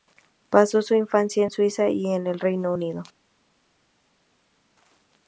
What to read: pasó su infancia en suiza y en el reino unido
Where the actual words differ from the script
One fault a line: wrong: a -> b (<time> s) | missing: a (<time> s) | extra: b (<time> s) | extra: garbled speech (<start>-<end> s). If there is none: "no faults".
no faults